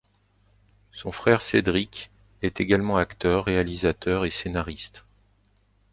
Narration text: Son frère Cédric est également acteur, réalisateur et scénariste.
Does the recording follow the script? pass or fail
pass